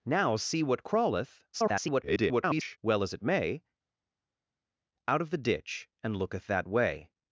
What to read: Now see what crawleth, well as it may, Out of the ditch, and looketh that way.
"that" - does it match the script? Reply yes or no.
yes